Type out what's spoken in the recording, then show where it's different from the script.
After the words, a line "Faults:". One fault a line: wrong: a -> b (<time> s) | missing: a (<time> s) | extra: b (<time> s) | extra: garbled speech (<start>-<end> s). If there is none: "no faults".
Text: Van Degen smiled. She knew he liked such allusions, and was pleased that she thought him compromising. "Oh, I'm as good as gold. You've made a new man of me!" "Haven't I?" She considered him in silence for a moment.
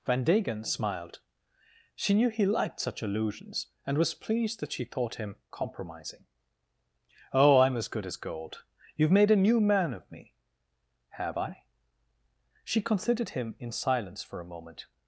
Van Degen smiled. She knew he liked such allusions, and was pleased that she thought him compromising. "Oh, I'm as good as gold. You've made a new man of me!" "Have I?" She considered him in silence for a moment.
Faults:
wrong: Haven't -> Have (11.1 s)